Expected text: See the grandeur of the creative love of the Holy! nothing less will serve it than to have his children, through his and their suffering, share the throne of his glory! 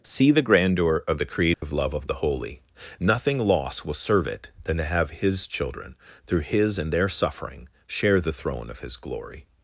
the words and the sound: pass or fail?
fail